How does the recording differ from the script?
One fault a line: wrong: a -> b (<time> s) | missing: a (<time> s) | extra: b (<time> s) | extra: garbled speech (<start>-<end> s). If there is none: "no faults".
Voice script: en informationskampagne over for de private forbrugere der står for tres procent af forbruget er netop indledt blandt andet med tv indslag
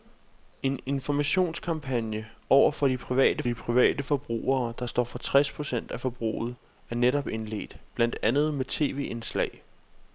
extra: de private (3.4 s)